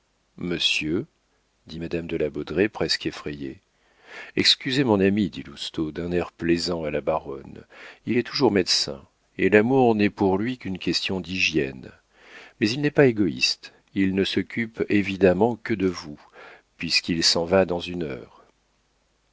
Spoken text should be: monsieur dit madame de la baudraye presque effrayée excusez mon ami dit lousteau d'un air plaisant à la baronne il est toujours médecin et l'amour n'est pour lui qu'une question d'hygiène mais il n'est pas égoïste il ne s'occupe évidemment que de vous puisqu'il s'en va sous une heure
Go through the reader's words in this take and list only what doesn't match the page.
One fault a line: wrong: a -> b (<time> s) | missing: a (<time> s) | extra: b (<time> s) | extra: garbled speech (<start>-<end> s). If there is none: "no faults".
wrong: sous -> dans (17.6 s)